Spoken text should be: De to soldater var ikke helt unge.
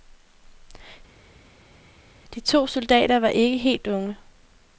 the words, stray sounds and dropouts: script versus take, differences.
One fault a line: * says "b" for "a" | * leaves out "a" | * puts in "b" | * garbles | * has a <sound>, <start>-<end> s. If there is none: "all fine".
all fine